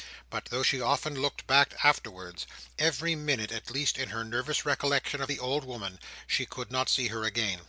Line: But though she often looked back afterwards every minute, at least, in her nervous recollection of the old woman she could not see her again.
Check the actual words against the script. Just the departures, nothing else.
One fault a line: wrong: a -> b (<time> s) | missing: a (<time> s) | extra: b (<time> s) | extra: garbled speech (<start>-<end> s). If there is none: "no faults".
no faults